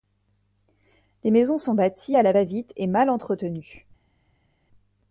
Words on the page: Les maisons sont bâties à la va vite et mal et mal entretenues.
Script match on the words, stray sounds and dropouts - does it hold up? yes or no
no